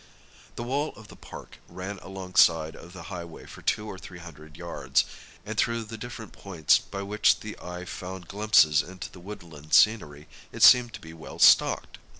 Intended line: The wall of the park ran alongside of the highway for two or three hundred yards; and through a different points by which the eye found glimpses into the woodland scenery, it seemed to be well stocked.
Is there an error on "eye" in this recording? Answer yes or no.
no